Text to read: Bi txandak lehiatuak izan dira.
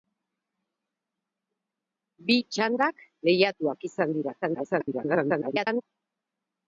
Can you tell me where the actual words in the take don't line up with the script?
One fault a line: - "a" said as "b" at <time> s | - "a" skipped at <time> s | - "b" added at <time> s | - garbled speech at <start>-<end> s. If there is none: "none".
- garbled speech at 4.4-5.8 s